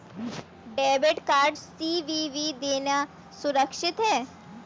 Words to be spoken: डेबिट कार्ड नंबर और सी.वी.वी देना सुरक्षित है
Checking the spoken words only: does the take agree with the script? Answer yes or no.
no